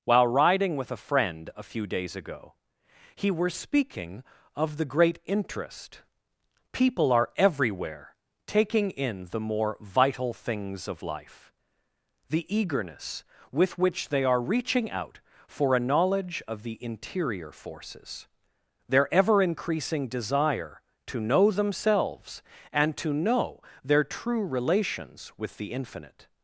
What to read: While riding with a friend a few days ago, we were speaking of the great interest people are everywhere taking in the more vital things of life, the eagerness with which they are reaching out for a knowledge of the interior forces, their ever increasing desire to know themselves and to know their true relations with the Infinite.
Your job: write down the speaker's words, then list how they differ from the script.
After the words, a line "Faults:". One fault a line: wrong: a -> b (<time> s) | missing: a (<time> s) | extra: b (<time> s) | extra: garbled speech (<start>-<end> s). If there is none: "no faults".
While riding with a friend a few days ago, he were speaking of the great interest people are everywhere taking in the more vital things of life, the eagerness with which they are reaching out for a knowledge of the interior forces, their ever increasing desire to know themselves and to know their true relations with the Infinite.
Faults:
wrong: we -> he (3.2 s)